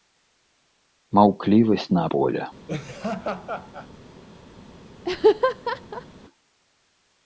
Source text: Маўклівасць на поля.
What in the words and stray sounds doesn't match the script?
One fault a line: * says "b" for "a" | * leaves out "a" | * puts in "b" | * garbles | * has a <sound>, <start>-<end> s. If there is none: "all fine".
* has a laugh, 2.7-3.9 s
* has a laugh, 5.0-6.1 s